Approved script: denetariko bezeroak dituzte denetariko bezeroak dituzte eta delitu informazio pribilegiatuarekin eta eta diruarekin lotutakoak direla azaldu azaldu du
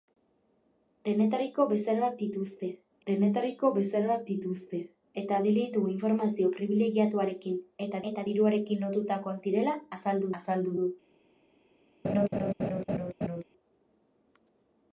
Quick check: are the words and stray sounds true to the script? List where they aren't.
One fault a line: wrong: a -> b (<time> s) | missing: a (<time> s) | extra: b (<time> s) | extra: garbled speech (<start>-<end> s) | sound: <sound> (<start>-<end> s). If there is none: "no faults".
sound: laugh (12.0-13.4 s)